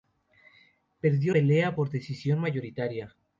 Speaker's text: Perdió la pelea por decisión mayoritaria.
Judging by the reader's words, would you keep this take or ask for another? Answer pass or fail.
fail